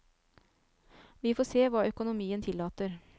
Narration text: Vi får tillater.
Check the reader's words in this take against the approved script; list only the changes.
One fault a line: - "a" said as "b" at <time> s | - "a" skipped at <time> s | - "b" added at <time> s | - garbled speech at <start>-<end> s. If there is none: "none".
- "se hva økonomien" added at 1.4 s